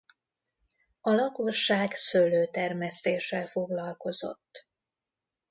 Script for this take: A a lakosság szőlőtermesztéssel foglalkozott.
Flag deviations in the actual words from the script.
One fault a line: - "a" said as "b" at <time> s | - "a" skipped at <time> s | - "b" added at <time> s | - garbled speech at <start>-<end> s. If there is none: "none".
- "a" skipped at 1.1 s